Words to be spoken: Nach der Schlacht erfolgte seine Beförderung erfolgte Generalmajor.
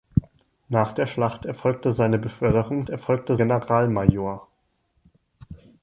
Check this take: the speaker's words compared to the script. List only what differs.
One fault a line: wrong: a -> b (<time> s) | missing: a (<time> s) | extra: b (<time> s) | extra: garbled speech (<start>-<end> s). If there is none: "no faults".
no faults